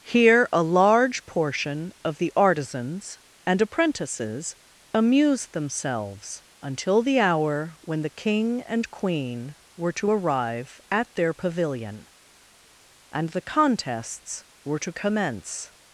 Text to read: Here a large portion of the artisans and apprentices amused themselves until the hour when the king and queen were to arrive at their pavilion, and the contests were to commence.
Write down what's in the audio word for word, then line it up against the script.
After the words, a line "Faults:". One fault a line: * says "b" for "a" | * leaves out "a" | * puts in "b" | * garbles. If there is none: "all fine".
Here a large portion of the artisans and apprentices amused themselves until the hour when the king and queen were to arrive at their pavilion, and the contests were to commence.
Faults:
all fine